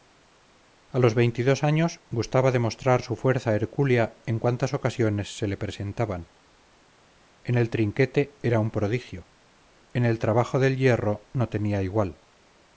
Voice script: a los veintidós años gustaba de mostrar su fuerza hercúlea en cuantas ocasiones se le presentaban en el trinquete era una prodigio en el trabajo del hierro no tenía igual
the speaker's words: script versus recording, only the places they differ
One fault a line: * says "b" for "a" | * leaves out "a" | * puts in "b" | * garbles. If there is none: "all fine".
* says "un" for "una"